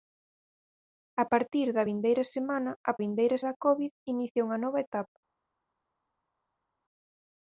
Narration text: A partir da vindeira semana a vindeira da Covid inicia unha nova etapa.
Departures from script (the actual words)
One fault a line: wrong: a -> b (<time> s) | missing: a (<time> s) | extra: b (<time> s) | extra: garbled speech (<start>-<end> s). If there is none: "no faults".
no faults